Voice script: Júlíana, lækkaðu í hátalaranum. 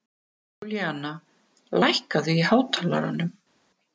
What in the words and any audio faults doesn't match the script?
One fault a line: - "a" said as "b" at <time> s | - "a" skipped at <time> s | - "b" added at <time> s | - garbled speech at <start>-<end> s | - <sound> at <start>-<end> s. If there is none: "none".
none